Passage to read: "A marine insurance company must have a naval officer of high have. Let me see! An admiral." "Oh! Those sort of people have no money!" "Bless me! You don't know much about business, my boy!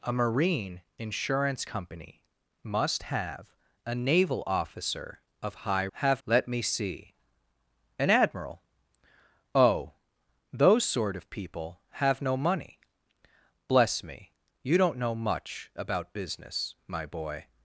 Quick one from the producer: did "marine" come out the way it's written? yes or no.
yes